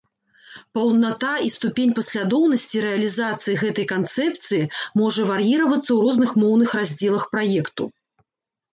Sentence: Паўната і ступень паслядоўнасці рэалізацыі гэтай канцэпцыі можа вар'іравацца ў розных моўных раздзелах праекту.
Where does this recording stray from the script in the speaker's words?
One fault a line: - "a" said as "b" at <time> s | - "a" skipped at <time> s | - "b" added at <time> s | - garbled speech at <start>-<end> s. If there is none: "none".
none